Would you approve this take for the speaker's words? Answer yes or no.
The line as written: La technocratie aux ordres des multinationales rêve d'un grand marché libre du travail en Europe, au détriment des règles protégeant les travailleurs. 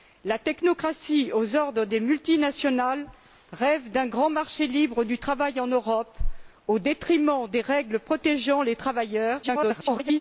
no